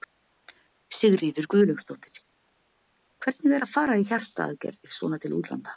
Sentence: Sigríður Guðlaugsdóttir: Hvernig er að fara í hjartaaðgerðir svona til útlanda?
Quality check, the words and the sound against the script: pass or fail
pass